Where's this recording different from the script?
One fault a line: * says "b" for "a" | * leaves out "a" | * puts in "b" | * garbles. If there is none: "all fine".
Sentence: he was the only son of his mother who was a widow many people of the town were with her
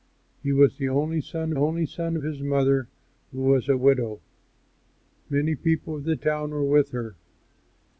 * puts in "only son"